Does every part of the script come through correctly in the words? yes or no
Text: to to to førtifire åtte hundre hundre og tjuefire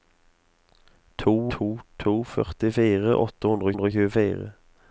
yes